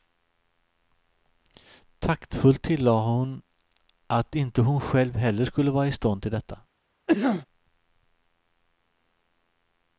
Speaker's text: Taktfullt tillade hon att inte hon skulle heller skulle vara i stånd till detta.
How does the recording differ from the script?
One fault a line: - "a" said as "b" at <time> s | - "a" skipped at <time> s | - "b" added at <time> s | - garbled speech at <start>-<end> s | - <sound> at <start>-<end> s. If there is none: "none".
- "skulle" said as "själv" at 4.8 s
- cough at 7.1-7.5 s